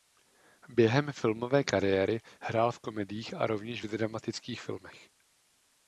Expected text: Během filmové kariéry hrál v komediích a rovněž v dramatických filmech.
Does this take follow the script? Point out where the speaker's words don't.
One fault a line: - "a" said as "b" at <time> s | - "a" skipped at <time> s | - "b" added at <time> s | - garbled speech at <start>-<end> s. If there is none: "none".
none